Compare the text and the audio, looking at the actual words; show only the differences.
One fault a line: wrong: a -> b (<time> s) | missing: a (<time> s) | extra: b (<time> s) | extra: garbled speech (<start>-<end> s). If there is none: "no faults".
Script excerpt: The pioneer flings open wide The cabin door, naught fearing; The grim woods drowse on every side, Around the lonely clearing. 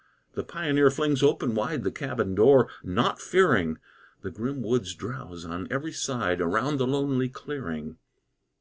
no faults